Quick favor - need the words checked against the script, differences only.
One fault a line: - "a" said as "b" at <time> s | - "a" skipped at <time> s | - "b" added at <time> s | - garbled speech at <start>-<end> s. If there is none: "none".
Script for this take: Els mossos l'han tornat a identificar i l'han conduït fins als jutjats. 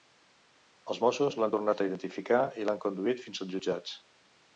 none